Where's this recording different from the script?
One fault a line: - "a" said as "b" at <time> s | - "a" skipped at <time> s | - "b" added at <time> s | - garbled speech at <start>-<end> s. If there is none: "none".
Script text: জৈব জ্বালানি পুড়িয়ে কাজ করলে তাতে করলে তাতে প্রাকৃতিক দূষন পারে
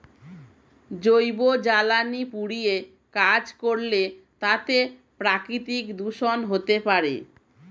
- "করলে তাতে" skipped at 4.8 s
- "হতে" added at 6.5 s